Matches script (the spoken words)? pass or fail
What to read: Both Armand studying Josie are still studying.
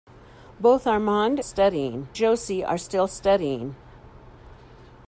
pass